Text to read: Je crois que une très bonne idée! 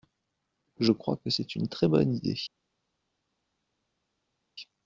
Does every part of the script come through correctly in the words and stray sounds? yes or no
no